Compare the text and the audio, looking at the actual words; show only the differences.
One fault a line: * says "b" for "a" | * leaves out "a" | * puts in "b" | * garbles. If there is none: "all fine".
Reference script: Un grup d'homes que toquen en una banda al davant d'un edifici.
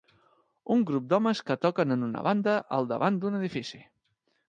all fine